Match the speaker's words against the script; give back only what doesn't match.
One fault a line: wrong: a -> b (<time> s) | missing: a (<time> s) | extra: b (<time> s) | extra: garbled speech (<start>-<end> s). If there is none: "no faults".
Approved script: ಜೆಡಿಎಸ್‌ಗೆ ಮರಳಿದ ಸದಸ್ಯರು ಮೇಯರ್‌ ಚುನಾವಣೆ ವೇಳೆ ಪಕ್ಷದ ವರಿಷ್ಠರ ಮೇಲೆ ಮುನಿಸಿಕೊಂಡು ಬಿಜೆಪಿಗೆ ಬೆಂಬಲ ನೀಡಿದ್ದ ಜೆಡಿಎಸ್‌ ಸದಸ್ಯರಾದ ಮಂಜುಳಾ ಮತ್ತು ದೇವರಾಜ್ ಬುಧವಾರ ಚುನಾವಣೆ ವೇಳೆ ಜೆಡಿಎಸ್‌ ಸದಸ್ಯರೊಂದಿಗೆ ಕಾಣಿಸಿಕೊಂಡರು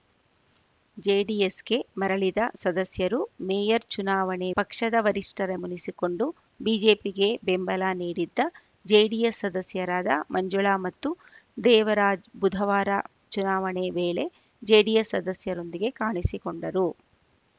missing: ವೇಳೆ (4.5 s)
missing: ಮೇಲೆ (5.5 s)